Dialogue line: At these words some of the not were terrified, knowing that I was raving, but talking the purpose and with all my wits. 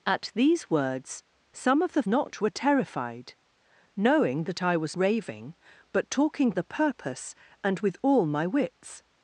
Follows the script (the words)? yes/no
yes